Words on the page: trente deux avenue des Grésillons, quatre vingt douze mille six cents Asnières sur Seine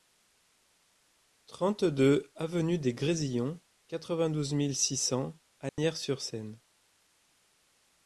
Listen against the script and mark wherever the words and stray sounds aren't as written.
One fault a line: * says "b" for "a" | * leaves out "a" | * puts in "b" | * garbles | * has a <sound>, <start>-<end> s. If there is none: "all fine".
* has a dropout, 5.7-5.8 s